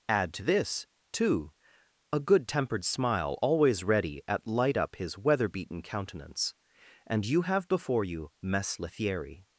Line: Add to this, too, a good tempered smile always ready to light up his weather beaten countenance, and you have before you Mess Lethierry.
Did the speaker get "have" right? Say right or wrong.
right